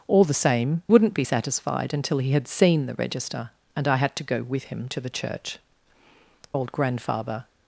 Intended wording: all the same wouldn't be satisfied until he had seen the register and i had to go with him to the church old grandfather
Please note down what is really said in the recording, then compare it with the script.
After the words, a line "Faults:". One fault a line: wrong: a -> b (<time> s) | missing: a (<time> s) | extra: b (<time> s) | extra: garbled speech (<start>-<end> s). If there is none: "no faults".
all the same wouldn't be satisfied until he had seen the register and i had to go with him to the church old grandfather
Faults:
no faults